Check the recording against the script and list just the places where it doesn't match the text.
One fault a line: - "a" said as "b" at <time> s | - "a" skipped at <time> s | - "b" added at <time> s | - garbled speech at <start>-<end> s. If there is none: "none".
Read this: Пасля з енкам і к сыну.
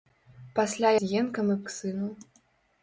none